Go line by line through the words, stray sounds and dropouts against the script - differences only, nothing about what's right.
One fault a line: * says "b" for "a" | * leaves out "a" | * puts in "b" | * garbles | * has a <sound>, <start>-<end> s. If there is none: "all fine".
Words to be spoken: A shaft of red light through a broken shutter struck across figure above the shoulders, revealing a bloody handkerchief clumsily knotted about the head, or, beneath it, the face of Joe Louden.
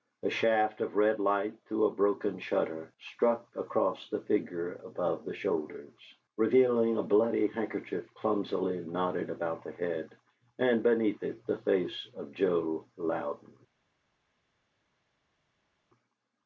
* puts in "the"
* says "and" for "or"